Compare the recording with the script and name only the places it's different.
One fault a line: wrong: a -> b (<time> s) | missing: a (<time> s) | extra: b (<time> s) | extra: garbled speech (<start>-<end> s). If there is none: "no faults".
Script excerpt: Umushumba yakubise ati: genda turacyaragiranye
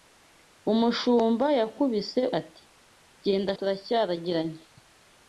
no faults